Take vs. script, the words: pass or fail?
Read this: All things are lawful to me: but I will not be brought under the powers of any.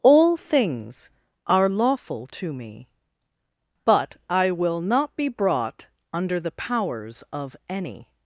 pass